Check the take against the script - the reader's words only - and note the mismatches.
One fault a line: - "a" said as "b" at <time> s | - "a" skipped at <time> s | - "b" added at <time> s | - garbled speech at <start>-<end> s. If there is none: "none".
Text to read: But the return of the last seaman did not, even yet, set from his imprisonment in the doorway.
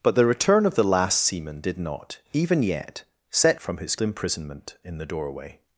none